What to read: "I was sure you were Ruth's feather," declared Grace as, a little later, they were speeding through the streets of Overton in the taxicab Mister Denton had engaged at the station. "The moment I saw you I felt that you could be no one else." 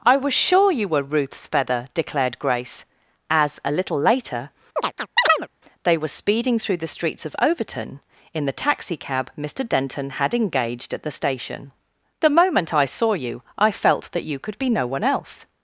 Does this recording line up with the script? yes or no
yes